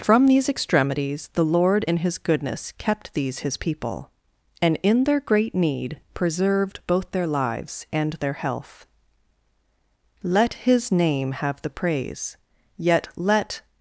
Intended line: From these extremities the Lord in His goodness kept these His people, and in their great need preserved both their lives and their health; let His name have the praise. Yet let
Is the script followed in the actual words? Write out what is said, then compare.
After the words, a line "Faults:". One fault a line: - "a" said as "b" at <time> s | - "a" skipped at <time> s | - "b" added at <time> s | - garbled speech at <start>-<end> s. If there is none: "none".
From these extremities the Lord in His goodness kept these His people, and in their great need preserved both their lives and their health; let His name have the praise. Yet let
Faults:
none